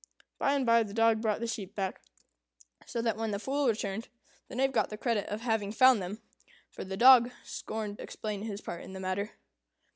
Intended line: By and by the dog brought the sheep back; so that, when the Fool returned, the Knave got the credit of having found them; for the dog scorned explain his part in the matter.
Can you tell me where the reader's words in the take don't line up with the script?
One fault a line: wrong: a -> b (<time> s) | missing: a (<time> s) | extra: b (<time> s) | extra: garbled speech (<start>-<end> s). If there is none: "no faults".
no faults